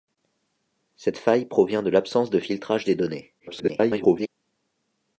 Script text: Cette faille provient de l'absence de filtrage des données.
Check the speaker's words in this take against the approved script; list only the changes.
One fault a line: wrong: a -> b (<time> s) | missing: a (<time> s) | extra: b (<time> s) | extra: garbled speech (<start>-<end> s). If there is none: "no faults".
extra: garbled speech (3.4-4.3 s)